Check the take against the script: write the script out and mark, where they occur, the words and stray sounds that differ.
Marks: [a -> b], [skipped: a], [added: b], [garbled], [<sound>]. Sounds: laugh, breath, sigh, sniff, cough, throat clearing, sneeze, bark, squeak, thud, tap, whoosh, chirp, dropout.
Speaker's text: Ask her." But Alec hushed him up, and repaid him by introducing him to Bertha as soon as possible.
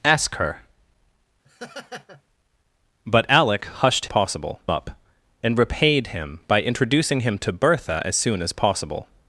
Ask her." [laugh] But Alec hushed [him -> possible] up, and repaid him by introducing him to Bertha as soon as possible.